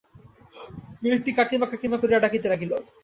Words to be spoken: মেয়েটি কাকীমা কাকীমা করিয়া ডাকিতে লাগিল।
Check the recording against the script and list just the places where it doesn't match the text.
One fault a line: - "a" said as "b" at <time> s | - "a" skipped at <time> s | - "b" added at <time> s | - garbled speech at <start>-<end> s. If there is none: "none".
none